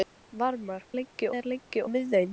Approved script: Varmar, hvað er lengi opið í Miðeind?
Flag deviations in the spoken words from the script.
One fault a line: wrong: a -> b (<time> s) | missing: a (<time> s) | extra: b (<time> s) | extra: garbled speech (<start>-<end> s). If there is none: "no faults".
wrong: hvað -> lengi (1.0 s)
missing: opið (1.8 s)